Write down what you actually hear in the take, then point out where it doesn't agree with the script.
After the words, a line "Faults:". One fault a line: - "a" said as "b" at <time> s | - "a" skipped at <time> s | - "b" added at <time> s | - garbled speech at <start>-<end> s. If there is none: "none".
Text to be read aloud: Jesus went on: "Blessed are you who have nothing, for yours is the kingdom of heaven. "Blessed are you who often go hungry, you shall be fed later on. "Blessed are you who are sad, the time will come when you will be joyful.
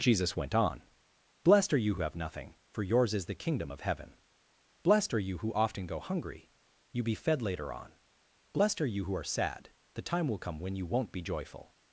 Jesus went on: "Blessed are you who have nothing, for yours is the kingdom of heaven. "Blessed are you who often go hungry, you be fed later on. "Blessed are you who are sad, the time will come when you won't be joyful.
Faults:
- "shall" skipped at 7.0 s
- "will" said as "won't" at 10.9 s